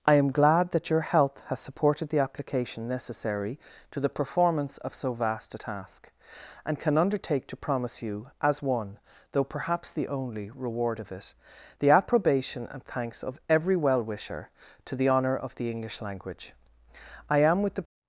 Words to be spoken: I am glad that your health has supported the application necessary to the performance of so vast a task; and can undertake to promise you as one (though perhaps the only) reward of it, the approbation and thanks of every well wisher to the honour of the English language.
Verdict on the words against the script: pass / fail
fail